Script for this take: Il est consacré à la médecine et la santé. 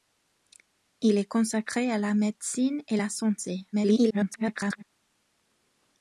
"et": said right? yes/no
yes